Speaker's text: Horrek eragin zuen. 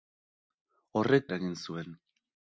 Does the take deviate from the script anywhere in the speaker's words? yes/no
no